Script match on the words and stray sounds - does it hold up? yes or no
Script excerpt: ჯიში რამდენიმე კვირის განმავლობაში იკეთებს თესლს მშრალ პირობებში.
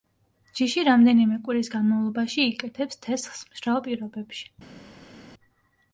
yes